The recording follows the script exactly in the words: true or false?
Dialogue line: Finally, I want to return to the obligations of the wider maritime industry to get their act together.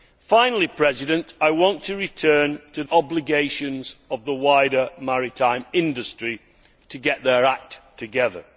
false